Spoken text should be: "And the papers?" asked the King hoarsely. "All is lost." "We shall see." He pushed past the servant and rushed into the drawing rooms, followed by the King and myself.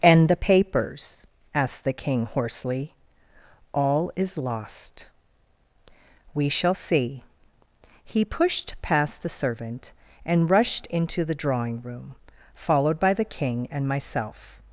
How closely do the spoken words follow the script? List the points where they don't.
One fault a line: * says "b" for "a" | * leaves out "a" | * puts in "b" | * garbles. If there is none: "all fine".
* says "room" for "rooms"